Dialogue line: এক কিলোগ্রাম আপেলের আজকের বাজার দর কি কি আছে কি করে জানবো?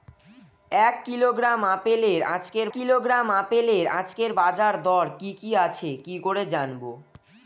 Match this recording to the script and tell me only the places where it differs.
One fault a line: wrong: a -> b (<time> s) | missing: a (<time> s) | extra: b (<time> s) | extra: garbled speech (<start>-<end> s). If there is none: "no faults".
extra: কিলোগ্রাম আপেলের আজকের (2.7 s)